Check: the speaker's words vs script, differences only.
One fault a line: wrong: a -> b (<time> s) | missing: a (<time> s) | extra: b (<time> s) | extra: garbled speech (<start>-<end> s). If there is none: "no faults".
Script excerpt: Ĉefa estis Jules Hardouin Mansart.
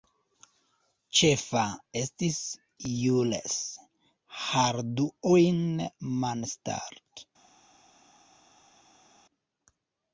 no faults